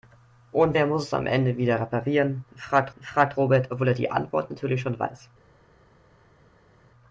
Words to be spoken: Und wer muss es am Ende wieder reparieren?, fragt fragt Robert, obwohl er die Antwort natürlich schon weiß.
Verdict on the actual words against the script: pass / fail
pass